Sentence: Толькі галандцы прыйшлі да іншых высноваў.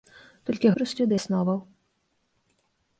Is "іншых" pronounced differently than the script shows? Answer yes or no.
yes